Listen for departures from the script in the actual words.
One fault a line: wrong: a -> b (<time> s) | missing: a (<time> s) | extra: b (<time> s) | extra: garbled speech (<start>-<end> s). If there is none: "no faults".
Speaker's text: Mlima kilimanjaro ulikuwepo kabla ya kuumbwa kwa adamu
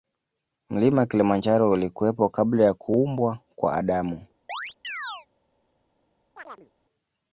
no faults